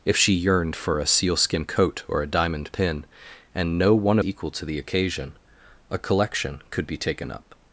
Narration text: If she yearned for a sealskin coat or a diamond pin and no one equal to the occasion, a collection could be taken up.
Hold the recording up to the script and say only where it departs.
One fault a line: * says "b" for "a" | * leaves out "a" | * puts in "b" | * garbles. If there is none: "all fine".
all fine